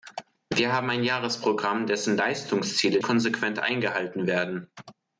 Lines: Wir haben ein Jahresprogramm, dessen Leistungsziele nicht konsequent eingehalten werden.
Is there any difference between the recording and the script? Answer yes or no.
yes